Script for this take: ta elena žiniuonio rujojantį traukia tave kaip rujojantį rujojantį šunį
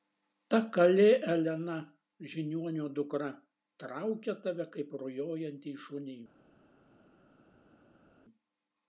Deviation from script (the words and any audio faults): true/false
true